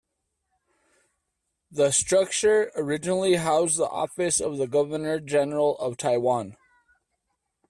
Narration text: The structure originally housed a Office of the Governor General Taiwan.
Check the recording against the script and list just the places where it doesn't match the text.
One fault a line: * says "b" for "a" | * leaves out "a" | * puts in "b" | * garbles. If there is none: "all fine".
* says "the" for "a"
* puts in "of"